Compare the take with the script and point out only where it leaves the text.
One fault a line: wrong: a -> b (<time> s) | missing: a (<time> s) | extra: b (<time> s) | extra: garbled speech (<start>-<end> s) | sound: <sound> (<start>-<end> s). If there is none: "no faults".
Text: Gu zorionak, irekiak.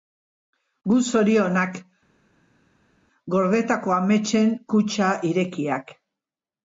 extra: gordetako ametsen kutxa (3.3 s)